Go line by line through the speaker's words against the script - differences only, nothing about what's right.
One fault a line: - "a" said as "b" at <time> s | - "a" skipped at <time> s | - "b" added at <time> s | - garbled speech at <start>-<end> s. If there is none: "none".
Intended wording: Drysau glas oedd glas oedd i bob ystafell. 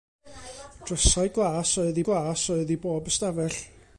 none